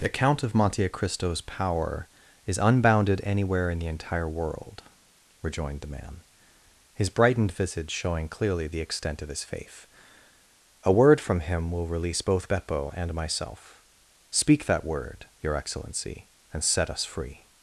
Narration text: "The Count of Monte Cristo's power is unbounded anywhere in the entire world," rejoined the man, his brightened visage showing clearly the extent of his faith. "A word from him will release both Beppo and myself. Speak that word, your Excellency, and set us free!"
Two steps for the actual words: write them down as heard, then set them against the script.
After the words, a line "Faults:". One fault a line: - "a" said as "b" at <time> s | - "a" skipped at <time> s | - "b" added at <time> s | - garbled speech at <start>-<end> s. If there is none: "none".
"The Count of Monte Cristo's power is unbounded anywhere in the entire world," rejoined the man, his brightened visage showing clearly the extent of his faith. "A word from him will release both Beppo and myself. Speak that word, your Excellency, and set us free!"
Faults:
none